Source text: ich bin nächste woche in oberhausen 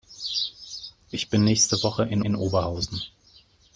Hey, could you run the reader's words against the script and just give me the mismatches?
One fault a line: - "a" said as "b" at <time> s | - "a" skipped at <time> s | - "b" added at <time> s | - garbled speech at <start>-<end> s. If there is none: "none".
- "in" added at 2.2 s